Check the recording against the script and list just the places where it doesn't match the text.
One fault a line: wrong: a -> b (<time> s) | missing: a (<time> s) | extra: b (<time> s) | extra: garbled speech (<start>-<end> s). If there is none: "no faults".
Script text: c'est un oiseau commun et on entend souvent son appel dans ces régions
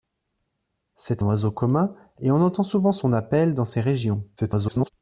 missing: un (1.2 s)
extra: garbled speech (4.4-4.9 s)